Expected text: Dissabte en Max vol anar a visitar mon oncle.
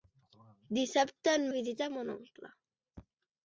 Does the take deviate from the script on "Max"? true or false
true